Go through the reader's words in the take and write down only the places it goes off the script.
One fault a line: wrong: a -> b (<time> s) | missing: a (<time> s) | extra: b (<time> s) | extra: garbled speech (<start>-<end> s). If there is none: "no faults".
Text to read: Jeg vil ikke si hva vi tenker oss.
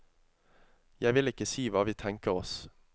no faults